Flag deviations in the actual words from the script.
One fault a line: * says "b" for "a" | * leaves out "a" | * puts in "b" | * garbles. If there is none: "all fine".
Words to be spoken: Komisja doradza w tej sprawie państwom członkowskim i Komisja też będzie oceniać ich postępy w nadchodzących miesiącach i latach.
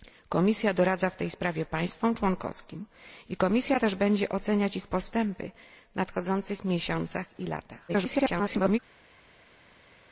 * garbles